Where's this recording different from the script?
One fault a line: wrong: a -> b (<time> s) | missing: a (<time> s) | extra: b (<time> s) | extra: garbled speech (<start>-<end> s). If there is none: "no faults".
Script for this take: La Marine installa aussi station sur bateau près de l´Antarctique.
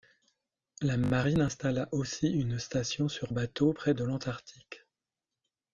extra: une (2.3 s)